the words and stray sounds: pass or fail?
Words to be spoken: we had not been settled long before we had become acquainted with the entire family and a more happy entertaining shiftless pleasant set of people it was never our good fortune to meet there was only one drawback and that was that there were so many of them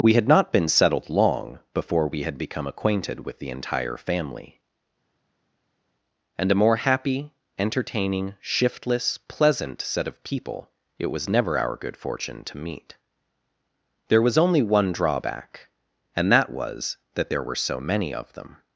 pass